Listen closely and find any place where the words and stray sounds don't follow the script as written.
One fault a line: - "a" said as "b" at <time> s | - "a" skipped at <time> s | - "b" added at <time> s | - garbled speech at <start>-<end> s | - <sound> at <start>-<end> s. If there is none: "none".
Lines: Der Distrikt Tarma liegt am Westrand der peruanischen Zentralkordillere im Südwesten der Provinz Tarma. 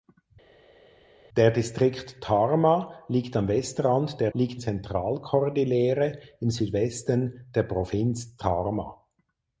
- "peruanischen" said as "liegt" at 4.3 s